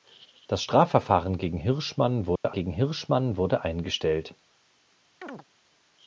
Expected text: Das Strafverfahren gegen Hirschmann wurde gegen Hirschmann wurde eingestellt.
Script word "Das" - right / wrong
right